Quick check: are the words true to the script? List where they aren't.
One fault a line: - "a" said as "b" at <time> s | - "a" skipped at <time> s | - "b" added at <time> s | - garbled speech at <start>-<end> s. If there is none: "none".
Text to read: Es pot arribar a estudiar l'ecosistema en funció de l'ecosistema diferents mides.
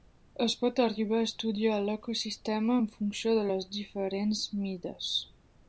- "l'ecosistema" said as "les" at 3.5 s